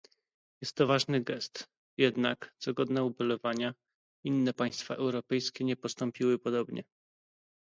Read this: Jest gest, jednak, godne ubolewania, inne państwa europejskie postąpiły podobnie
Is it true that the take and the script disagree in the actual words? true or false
true